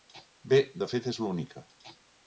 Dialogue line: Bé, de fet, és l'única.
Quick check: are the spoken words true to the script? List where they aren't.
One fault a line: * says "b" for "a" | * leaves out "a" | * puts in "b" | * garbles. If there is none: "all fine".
all fine